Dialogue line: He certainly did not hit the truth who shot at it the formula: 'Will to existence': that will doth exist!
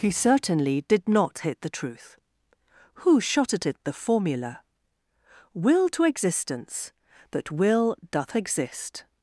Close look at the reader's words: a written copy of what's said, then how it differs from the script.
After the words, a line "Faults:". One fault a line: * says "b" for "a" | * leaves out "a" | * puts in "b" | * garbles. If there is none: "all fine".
He certainly did not hit the truth who shot at it the formula: 'Will to existence': that will doth exist!
Faults:
all fine